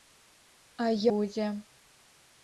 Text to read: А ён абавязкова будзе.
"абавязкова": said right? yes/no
no